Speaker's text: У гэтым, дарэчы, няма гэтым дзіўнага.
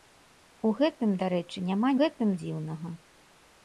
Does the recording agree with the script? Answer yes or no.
yes